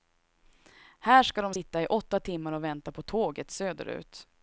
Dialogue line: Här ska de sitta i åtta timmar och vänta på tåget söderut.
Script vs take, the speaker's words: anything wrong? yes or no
no